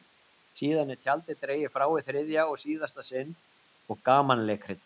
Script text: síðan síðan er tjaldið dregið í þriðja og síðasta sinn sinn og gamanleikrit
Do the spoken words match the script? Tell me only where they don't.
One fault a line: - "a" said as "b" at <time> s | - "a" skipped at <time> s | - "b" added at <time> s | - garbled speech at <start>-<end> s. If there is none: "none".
- "síðan" skipped at 0.9 s
- "frá" added at 1.8 s
- "sinn" skipped at 3.4 s